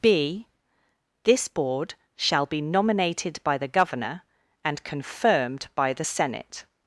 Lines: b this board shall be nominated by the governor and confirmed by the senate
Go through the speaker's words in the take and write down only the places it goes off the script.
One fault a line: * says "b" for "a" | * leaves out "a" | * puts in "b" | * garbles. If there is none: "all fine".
all fine